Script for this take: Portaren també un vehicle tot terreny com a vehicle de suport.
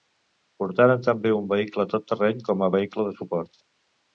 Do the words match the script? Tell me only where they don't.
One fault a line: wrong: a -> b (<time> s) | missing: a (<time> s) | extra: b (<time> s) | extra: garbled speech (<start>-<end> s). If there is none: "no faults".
no faults